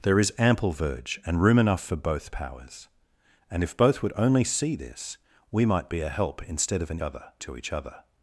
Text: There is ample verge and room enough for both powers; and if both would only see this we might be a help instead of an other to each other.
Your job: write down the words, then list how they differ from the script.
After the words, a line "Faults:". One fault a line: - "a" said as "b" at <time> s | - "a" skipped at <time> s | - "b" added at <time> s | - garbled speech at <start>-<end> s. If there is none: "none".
There is ample verge and room enough for both powers; and if both would only see this we might be a help instead of an other to each other.
Faults:
none